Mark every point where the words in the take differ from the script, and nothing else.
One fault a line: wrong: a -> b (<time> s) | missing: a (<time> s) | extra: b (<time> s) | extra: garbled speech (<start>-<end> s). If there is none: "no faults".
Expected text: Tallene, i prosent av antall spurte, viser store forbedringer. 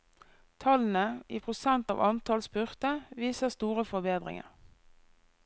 no faults